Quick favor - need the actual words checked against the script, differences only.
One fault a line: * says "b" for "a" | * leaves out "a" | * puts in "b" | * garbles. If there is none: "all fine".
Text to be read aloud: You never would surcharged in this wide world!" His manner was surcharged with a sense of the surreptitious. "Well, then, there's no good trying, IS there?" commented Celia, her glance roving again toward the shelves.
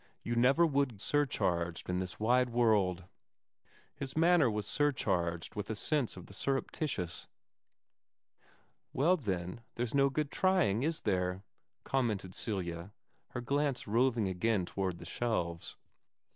all fine